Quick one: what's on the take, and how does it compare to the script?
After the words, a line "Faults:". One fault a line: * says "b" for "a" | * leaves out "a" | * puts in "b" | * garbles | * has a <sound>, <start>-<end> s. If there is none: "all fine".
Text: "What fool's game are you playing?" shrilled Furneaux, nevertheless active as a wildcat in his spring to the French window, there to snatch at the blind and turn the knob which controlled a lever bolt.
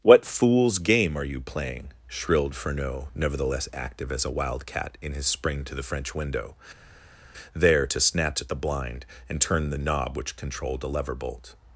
"What fool's game are you playing?" shrilled Furneaux, nevertheless active as a wildcat in his spring to the French window, there to snatch at the blind and turn the knob which controlled a lever bolt.
Faults:
all fine